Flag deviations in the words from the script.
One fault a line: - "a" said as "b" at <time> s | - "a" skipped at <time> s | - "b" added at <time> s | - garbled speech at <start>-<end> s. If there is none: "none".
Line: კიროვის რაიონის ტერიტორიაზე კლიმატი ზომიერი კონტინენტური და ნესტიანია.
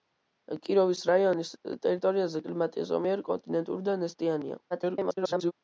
- garbled speech at 4.7-5.5 s